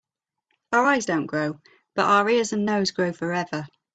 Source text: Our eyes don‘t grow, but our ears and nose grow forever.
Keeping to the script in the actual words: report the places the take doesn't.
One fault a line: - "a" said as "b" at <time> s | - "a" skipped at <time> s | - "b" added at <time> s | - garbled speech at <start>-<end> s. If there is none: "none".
none